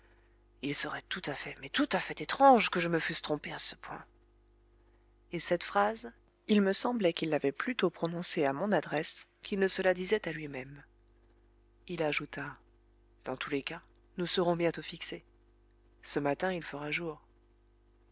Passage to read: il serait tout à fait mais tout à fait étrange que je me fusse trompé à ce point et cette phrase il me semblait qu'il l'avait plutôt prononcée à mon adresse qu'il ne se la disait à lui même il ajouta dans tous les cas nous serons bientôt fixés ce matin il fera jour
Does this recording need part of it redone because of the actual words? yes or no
no